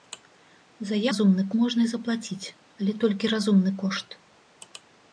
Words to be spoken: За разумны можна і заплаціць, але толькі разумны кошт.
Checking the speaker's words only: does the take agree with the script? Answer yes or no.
yes